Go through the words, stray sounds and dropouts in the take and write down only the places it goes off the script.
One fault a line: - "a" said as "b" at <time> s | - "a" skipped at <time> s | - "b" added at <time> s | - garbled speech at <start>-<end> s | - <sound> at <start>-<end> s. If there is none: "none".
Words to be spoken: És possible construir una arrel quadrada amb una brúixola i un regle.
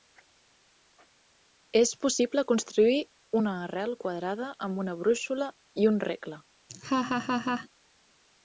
- laugh at 6.7-7.7 s